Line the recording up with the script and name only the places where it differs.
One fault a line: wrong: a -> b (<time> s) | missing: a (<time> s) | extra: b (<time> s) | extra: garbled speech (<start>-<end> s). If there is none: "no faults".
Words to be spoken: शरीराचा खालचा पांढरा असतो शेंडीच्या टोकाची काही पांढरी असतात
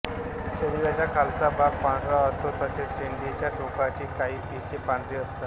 extra: भाग (1.5 s)
extra: तसेच (2.6 s)
extra: पिसे (4.5 s)